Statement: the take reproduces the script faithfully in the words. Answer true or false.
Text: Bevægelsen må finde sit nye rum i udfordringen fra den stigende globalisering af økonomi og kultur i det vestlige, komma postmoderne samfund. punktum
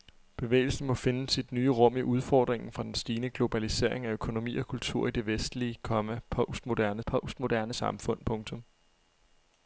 false